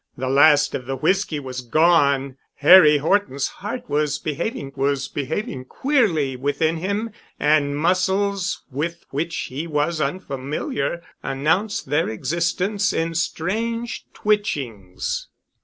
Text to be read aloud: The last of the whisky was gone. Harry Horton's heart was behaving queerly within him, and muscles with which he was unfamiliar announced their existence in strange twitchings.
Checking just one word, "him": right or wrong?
right